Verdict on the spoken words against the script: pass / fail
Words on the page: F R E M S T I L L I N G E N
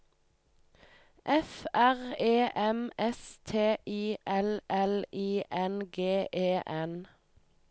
pass